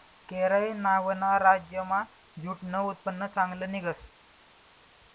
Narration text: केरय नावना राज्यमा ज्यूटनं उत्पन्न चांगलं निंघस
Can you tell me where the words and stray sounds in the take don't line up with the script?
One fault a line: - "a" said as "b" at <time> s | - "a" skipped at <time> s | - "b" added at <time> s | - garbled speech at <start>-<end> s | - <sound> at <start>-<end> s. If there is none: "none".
none